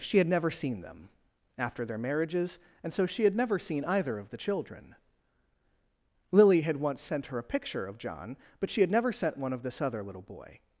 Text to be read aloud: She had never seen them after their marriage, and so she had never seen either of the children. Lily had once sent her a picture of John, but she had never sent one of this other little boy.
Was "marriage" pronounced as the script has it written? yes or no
no